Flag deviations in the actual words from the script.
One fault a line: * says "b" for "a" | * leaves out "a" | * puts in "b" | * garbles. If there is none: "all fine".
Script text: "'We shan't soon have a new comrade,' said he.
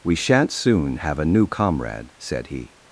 all fine